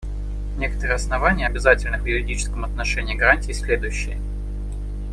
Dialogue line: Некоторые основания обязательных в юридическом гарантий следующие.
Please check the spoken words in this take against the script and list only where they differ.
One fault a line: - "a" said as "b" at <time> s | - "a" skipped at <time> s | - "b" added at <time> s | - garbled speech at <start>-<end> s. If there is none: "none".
- "отношении" added at 2.7 s